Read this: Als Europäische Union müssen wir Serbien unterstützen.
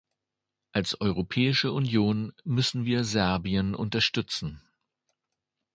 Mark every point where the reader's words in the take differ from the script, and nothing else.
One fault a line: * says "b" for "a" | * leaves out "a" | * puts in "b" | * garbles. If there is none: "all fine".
all fine